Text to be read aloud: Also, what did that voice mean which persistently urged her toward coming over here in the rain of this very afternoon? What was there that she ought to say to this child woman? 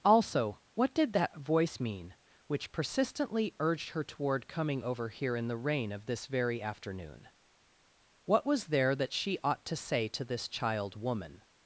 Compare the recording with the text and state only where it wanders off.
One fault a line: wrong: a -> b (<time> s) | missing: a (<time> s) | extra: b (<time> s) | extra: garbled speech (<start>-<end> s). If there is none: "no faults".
no faults